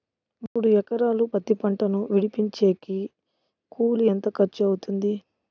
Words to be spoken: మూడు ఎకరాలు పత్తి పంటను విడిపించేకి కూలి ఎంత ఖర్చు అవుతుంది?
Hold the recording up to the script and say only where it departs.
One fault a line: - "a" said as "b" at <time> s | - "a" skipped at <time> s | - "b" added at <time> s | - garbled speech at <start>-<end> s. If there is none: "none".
none